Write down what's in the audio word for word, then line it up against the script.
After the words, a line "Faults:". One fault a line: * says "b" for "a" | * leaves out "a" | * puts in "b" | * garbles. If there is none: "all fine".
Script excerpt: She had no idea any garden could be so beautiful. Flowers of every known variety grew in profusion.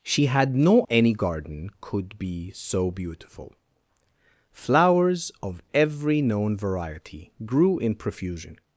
She had no any garden could be so beautiful. Flowers of every known variety grew in profusion.
Faults:
* leaves out "idea"